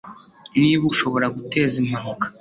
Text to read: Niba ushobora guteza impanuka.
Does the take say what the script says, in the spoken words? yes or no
yes